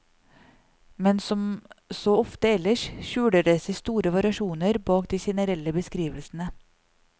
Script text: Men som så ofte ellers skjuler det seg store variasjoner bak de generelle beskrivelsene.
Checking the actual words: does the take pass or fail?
pass